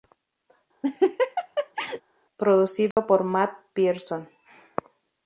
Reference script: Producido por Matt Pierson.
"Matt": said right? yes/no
yes